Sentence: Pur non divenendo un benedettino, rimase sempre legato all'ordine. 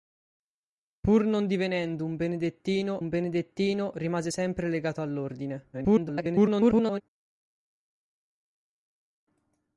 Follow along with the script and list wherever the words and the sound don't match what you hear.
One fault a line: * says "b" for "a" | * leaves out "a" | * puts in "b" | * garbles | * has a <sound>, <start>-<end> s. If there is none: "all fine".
* puts in "un benedettino"
* garbles